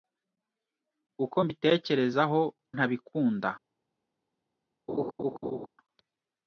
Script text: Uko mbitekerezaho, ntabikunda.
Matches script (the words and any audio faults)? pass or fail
fail